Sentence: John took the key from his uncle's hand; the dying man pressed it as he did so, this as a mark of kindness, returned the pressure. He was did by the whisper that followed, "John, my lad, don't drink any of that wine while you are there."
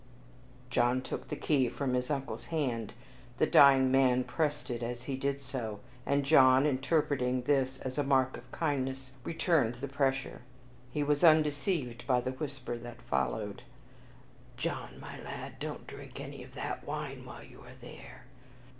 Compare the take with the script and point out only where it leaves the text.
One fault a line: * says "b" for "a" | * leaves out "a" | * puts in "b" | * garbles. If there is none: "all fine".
* puts in "and John interpreting"
* says "undeceived" for "did"